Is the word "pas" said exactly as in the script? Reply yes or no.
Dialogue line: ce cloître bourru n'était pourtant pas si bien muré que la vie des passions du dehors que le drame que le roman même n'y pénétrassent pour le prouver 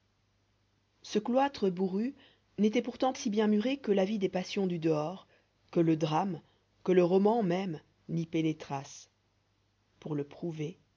no